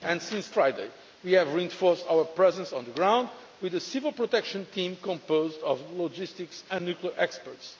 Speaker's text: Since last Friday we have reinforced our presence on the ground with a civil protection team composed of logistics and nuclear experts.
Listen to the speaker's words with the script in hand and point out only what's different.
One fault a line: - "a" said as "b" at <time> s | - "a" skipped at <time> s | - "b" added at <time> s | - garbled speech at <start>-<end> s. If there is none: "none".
- "last" skipped at 0.6 s